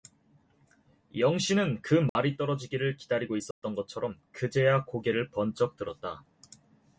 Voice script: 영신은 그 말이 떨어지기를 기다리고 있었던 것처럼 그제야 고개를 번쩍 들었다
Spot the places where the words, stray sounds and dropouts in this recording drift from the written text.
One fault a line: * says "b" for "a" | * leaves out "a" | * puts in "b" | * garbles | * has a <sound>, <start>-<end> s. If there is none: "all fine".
* has a dropout, 2.1-2.2 s
* has a dropout, 3.5-3.6 s